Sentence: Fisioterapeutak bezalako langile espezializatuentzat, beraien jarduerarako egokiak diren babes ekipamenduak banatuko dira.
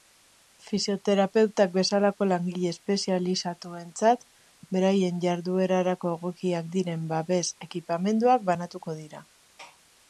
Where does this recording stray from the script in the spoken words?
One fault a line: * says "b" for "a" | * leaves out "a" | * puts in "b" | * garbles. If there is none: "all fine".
all fine